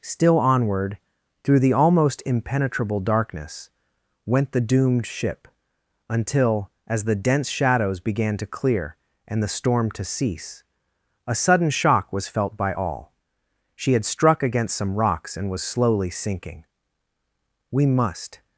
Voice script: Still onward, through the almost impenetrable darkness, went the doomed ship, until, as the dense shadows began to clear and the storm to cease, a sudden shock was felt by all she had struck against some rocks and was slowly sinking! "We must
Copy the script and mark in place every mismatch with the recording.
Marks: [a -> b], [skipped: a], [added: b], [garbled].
Still onward, through the almost impenetrable darkness, went the doomed ship, until, as the dense shadows began to clear and the storm to cease, a sudden shock was felt by all she had struck against some rocks and was slowly sinking! "We must